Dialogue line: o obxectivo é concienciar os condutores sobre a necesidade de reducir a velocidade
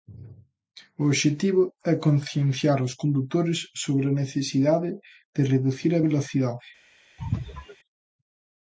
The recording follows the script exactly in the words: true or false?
true